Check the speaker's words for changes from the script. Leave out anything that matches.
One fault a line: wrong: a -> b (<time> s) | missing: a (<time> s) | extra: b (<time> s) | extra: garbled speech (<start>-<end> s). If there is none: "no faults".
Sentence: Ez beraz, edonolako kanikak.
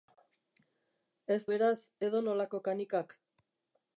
no faults